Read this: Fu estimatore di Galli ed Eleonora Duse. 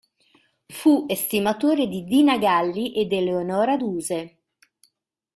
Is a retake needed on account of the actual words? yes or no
yes